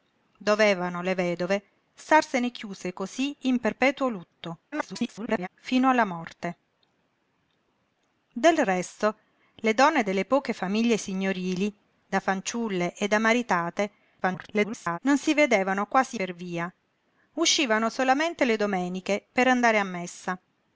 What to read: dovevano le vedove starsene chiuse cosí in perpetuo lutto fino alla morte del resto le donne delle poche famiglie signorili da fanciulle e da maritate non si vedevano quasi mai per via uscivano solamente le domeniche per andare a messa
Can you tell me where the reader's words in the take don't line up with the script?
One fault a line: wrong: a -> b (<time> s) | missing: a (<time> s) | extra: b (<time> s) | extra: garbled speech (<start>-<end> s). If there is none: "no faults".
extra: garbled speech (4.7-5.5 s)
extra: garbled speech (14.2-15.0 s)
missing: mai (16.2 s)